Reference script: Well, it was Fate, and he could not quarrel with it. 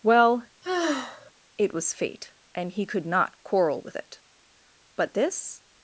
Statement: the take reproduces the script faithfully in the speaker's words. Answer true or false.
false